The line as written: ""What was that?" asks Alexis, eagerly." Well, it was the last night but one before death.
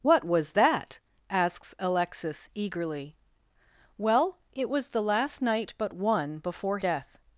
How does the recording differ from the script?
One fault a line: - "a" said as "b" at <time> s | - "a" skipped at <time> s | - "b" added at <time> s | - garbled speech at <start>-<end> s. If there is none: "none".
none